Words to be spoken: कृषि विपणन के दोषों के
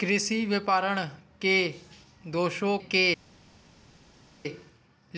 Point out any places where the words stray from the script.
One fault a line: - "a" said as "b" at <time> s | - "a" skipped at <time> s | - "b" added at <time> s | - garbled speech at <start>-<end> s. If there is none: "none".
none